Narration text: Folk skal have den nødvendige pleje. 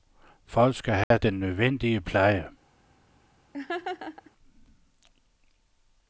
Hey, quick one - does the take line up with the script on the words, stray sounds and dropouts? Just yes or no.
no